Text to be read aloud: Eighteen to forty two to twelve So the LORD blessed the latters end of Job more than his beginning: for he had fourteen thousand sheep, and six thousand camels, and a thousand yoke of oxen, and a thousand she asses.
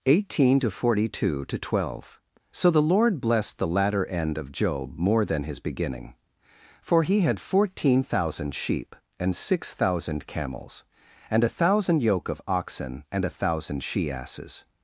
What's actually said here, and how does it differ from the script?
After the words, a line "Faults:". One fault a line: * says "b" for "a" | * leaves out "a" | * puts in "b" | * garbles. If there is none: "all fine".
Eighteen to forty two to twelve So the LORD blessed the latter end of Job more than his beginning: for he had fourteen thousand sheep, and six thousand camels, and a thousand yoke of oxen, and a thousand she asses.
Faults:
* says "latter" for "latters"